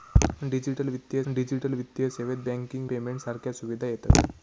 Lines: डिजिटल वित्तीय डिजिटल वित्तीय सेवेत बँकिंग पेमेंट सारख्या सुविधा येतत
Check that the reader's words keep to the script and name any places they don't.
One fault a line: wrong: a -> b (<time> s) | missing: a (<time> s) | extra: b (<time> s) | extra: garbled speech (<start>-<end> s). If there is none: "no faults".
no faults